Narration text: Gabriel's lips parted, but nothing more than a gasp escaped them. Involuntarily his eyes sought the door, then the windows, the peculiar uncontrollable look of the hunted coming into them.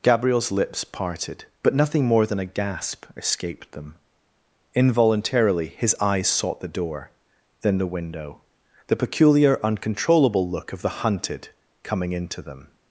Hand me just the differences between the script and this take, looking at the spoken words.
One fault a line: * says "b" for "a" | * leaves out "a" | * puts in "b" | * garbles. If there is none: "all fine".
* says "window" for "windows"